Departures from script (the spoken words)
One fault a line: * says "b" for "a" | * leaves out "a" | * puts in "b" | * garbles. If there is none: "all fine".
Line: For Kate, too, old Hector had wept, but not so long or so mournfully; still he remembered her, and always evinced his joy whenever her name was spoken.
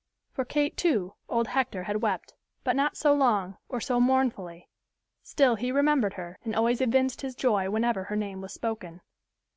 all fine